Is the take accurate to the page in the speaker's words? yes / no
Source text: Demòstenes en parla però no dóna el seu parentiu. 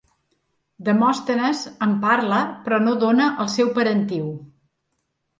yes